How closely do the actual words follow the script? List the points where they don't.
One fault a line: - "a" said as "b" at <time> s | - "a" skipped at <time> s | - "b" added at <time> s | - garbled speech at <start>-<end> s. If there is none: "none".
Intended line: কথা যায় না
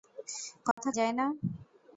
none